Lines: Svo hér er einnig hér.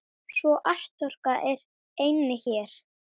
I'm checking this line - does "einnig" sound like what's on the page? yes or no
yes